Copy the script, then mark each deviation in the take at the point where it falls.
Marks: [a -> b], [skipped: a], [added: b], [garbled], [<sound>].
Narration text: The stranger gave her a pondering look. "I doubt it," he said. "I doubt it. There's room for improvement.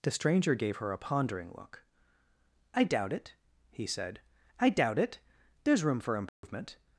The stranger gave her a pondering look. "I doubt it," he said. "I doubt it. There's room for improvement. [dropout]